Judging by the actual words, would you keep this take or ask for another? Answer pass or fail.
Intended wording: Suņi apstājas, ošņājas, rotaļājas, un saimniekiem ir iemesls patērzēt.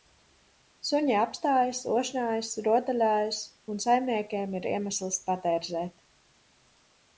pass